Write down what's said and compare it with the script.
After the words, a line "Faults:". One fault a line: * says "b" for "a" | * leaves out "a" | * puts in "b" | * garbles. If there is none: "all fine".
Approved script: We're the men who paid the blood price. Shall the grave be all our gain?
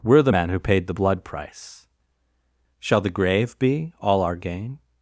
We're the men who paid the blood price. Shall the grave be all our gain?
Faults:
all fine